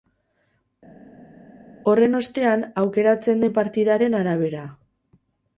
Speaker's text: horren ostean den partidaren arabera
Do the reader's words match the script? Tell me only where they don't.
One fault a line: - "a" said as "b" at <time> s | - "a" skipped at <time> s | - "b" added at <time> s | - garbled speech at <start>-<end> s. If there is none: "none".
- "aukeratzen" added at 2.8 s